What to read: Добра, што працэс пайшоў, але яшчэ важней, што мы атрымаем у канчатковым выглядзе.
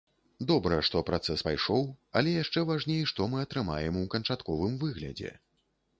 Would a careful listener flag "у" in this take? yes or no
no